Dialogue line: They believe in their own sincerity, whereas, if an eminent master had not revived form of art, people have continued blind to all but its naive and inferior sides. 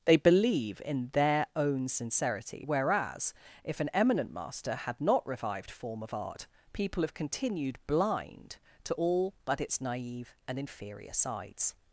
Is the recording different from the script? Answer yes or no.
no